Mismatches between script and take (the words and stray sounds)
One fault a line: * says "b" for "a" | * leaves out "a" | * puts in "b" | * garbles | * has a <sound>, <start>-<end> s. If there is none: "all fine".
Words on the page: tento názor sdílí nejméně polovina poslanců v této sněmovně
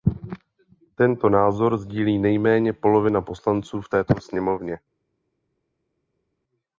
all fine